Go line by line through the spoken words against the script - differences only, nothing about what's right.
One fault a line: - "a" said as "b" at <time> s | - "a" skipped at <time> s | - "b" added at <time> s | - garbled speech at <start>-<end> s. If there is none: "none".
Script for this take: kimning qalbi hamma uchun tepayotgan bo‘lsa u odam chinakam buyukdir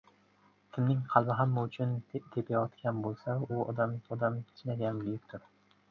- "odam" added at 4.2 s